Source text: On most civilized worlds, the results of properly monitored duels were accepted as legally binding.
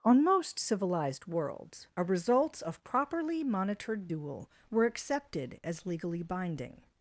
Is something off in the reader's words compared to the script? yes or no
yes